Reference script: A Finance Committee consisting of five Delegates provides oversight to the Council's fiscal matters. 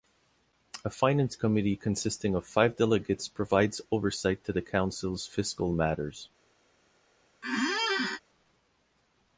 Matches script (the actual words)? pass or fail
pass